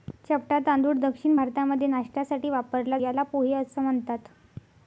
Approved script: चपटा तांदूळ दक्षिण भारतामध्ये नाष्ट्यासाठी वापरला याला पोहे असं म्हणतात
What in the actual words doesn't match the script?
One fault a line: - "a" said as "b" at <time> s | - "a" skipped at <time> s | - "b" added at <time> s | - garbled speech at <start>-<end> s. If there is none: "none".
none